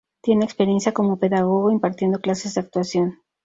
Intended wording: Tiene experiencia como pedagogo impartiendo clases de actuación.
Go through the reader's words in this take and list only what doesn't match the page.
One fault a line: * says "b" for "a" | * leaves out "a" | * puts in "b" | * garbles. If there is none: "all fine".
all fine